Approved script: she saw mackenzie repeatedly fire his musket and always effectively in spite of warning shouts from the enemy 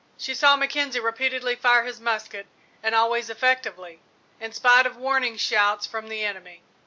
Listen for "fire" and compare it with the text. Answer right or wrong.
right